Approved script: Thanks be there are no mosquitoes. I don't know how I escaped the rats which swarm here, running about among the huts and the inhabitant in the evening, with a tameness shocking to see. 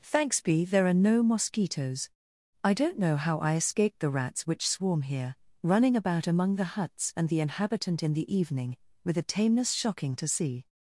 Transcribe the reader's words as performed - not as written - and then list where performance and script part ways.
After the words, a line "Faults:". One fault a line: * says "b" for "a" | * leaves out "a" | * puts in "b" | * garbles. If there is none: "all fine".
Thanks be there are no mosquitoes. I don't know how I escaped the rats which swarm here, running about among the huts and the inhabitant in the evening, with a tameness shocking to see.
Faults:
all fine